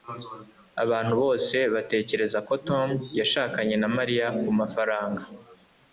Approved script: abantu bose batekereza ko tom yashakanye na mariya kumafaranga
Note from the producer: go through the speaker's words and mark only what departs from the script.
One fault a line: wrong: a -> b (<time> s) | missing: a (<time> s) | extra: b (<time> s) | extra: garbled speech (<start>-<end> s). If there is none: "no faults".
no faults